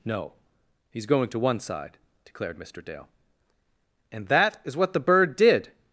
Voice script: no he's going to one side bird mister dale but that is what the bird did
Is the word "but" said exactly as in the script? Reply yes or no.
no